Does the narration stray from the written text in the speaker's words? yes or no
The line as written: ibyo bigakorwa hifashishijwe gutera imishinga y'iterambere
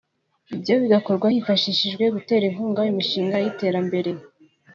yes